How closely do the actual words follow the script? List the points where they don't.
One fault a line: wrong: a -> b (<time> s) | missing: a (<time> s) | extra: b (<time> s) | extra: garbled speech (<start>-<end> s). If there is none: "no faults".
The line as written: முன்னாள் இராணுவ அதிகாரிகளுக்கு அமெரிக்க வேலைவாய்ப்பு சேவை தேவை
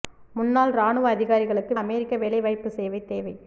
no faults